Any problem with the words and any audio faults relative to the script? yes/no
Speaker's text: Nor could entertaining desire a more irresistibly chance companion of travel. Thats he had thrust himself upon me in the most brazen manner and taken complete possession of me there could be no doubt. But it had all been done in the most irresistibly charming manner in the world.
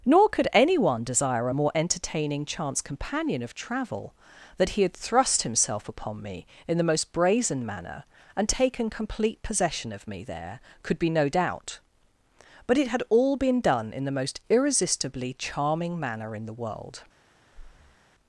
yes